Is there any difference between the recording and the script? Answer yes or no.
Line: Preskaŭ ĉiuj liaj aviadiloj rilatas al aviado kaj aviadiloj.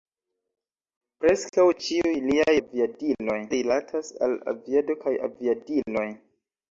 no